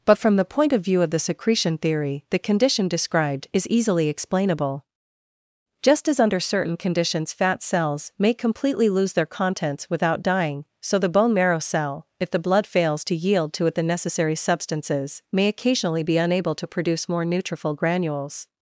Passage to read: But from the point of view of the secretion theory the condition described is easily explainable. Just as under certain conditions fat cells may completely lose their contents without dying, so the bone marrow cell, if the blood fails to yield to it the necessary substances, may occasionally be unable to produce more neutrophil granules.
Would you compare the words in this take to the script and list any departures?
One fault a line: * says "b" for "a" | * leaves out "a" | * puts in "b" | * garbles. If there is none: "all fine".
all fine